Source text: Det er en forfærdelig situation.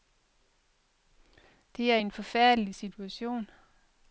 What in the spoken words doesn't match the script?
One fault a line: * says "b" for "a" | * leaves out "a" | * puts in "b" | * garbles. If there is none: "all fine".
all fine